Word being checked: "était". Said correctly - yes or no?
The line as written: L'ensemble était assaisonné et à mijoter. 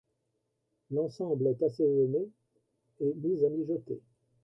no